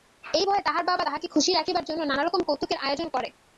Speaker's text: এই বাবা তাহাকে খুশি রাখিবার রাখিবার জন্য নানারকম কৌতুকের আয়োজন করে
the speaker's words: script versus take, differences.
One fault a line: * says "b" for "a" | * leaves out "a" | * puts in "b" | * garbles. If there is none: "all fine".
* puts in "ভয়ে তাহার"
* leaves out "রাখিবার"